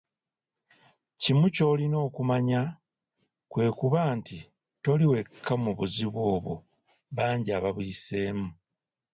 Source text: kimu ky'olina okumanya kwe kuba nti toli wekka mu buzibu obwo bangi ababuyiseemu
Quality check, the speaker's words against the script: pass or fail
pass